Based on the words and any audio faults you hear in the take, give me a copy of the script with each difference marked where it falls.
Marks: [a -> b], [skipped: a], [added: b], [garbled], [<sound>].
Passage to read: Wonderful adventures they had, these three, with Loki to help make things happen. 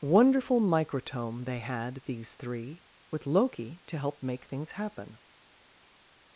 Wonderful [adventures -> microtome] they had, these three, with Loki to help make things happen.